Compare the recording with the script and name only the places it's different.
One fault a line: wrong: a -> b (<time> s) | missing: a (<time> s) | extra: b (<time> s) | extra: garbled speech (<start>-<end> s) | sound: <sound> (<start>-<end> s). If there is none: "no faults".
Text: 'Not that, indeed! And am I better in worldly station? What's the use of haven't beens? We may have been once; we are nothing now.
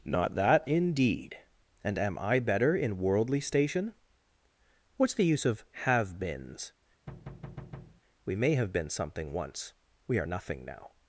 wrong: haven't -> have (5.8 s)
sound: thud (7.1-8.0 s)
extra: something (8.9 s)